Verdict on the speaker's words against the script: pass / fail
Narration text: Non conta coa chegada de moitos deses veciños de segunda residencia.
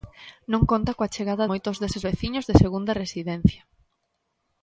fail